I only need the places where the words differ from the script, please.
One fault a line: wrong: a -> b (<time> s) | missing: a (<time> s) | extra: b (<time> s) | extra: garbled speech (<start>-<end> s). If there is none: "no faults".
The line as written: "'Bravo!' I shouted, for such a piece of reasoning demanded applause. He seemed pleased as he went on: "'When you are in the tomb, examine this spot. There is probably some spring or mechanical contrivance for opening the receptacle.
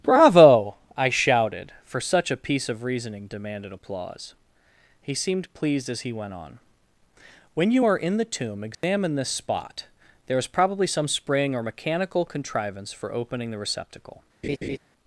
no faults